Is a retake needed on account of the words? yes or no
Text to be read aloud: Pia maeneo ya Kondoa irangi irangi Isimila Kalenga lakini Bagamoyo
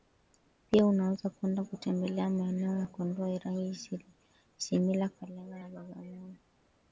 yes